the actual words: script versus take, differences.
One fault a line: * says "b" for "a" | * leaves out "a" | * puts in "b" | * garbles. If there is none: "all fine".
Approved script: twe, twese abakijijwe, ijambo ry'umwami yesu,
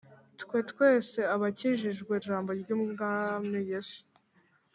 all fine